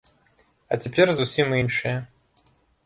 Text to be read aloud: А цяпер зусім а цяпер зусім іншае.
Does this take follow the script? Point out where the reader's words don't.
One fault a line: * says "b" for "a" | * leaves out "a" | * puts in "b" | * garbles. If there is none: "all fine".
* leaves out "а цяпер зусім"